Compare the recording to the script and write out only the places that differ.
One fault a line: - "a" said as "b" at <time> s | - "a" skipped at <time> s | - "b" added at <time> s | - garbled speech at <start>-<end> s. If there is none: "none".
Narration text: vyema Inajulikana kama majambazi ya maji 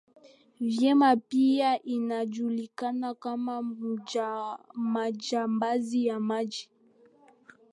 - "Pia" added at 1.1 s